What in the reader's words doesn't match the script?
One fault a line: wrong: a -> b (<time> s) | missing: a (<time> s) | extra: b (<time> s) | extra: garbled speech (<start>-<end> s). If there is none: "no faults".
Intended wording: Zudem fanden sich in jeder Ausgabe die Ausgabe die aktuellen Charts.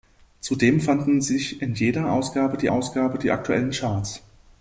no faults